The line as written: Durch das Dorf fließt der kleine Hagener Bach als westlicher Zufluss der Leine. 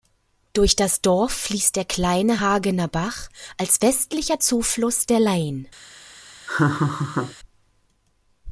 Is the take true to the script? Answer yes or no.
yes